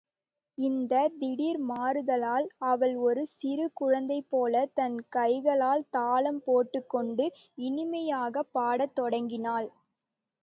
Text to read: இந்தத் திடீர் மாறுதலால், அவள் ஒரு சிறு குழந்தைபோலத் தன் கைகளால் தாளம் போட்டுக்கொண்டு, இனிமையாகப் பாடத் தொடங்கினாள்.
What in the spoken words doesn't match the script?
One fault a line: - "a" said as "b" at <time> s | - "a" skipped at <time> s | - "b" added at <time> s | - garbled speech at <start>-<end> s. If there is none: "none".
none